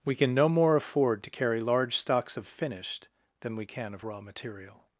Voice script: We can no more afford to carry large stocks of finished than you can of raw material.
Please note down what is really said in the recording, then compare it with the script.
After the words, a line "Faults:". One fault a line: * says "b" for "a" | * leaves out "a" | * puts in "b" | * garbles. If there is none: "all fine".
We can no more afford to carry large stocks of finished than we can of raw material.
Faults:
* says "we" for "you"